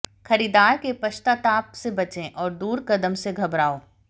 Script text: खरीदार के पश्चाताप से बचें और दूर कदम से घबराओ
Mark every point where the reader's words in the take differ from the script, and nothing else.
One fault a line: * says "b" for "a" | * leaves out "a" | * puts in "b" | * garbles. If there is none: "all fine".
all fine